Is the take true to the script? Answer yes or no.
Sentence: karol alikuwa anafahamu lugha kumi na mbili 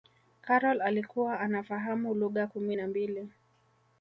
yes